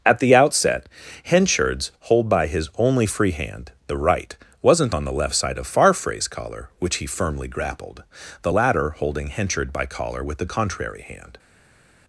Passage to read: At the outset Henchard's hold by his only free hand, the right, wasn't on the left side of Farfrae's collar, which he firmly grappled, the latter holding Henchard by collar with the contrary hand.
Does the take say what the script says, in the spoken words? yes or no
yes